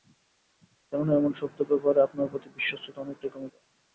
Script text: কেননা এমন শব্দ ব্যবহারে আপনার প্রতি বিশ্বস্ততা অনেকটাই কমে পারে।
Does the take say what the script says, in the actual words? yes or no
yes